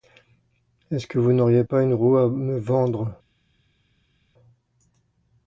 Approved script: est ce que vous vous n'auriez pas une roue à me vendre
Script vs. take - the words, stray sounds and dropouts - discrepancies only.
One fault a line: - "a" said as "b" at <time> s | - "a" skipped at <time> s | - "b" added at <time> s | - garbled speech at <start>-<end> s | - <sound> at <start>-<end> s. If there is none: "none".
- "vous" skipped at 1.3 s